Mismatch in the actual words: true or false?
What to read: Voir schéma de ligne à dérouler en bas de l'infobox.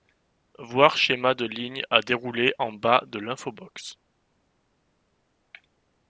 false